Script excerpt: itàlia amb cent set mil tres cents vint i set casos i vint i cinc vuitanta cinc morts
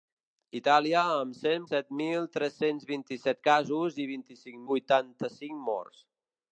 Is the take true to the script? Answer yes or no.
yes